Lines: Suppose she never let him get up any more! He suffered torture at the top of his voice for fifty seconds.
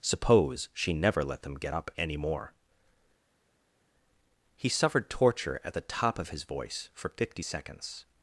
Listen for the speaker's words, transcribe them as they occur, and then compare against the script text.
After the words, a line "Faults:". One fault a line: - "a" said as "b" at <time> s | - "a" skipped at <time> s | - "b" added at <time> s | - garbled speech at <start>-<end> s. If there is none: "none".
Suppose she never let them get up any more! He suffered torture at the top of his voice for fifty seconds.
Faults:
- "him" said as "them" at 1.4 s